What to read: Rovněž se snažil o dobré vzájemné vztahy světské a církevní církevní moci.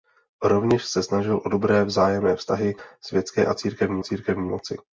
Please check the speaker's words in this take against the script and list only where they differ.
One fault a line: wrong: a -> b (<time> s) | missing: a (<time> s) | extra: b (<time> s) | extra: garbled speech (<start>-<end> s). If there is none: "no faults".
no faults